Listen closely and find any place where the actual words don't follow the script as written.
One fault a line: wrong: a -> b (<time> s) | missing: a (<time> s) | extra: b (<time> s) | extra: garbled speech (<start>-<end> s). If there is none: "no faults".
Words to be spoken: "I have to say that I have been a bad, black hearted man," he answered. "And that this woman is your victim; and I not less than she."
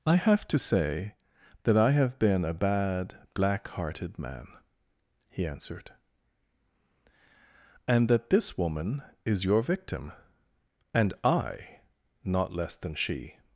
no faults